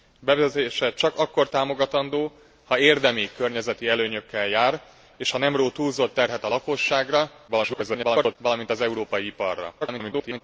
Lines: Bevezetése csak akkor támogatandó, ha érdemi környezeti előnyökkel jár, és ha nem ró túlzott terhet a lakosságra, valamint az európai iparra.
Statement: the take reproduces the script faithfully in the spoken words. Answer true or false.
false